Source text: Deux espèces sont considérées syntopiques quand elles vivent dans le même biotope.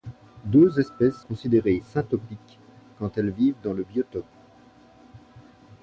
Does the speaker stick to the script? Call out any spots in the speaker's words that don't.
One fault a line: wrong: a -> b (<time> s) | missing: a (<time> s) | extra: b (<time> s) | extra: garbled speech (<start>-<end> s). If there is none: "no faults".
missing: sont (1.2 s)
missing: même (3.8 s)